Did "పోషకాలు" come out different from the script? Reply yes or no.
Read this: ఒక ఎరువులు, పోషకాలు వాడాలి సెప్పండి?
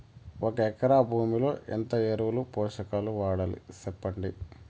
no